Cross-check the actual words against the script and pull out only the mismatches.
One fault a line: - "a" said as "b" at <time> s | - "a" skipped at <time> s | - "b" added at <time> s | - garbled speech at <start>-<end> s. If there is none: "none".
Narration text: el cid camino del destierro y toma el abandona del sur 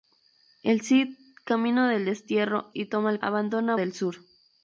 none